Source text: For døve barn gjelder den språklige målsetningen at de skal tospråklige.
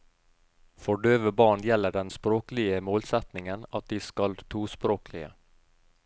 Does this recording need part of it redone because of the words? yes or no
no